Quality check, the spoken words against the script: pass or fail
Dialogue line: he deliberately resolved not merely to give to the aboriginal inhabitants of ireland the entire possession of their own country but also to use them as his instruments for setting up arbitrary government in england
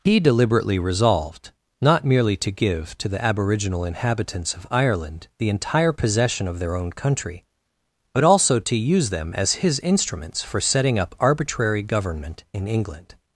pass